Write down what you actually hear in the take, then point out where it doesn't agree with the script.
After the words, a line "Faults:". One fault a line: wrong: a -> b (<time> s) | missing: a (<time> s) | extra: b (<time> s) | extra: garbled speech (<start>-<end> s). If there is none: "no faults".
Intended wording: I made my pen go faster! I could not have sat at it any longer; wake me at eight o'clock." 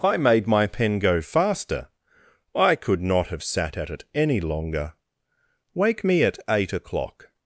I made my pen go faster! I could not have sat at it any longer; wake me at eight o'clock."
Faults:
no faults